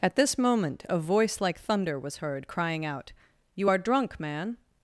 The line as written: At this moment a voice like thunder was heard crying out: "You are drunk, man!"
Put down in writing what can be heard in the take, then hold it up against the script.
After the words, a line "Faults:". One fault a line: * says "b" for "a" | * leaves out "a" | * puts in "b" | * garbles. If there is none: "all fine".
At this moment a voice like thunder was heard crying out: "You are drunk, man!"
Faults:
all fine